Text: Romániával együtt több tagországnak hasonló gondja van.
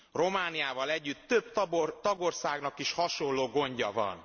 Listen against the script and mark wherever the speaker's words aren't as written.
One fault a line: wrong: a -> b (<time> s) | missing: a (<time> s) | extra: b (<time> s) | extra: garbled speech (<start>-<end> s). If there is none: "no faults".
extra: is (2.8 s)